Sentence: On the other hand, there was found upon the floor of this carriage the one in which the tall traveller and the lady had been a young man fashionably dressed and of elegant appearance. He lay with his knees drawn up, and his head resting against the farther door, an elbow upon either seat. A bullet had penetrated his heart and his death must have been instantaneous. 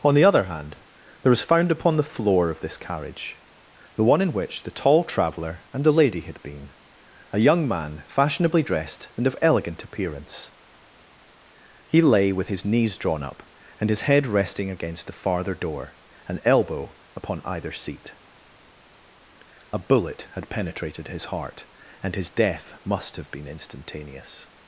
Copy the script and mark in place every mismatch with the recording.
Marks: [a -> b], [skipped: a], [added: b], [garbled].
On the other hand, there was found upon the floor of this carriage the one in which the tall traveller and the lady had been a young man fashionably dressed and of elegant appearance. He lay with his knees drawn up, and his head resting against the farther door, an elbow upon either seat. A bullet had penetrated his heart and his death must have been instantaneous.